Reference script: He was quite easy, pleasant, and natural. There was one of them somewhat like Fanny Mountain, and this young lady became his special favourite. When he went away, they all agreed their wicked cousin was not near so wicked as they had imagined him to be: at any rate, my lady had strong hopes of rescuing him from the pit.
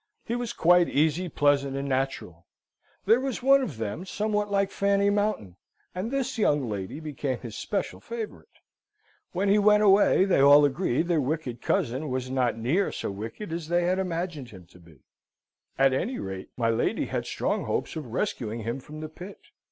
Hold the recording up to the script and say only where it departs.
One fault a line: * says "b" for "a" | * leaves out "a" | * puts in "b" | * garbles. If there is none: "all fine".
all fine